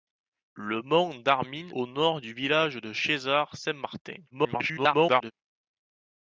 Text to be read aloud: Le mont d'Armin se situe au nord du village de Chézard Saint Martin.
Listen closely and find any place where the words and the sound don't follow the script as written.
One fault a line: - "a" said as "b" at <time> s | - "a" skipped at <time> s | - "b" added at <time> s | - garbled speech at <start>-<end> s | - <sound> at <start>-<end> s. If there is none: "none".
- "se situe" skipped at 1.7 s
- garbled speech at 4.3-5.3 s